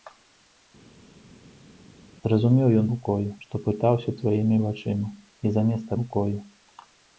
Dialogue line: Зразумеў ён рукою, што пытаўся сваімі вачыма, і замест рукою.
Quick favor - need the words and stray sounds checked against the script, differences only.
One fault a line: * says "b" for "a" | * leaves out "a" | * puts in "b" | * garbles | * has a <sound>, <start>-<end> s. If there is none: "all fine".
all fine